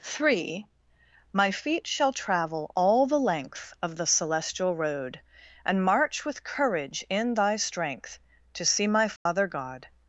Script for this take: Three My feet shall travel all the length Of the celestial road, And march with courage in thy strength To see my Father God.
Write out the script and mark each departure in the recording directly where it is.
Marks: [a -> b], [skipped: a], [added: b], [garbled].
Three My feet shall travel all the length Of the celestial road, And march with courage in thy strength To see my Father God.